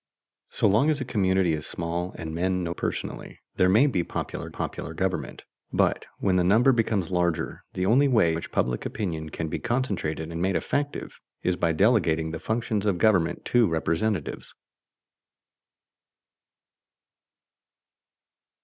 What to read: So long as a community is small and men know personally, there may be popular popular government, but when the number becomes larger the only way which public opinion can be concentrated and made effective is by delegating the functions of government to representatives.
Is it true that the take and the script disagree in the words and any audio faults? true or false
false